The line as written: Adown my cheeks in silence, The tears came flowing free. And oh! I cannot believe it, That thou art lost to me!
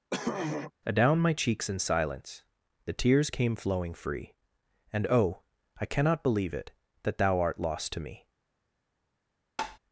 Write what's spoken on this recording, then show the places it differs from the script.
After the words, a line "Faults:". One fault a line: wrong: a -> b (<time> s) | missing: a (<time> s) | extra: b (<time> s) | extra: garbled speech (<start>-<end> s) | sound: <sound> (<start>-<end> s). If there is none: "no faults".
Adown my cheeks in silence, The tears came flowing free. And oh! I cannot believe it, That thou art lost to me!
Faults:
sound: throat clearing (0.1-0.7 s)
sound: tap (9.6-9.8 s)